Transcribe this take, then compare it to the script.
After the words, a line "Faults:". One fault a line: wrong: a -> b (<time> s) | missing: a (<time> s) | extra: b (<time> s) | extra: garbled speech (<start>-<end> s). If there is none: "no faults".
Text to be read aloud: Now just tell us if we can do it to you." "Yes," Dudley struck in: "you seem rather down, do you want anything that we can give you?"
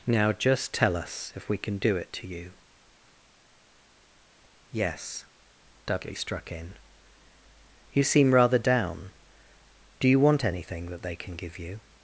Now just tell us if we can do it to you." "Yes," Dudley struck in: "you seem rather down, do you want anything that they can give you?"
Faults:
wrong: we -> they (11.0 s)